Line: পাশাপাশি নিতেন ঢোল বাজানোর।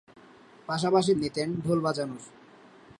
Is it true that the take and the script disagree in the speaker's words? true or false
false